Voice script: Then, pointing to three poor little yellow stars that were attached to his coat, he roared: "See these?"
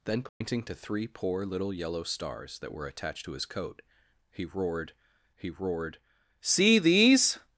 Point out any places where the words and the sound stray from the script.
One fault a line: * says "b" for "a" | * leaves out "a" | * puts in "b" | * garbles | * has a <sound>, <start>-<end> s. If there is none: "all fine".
* has a dropout, 0.3-0.4 s
* puts in "he roared"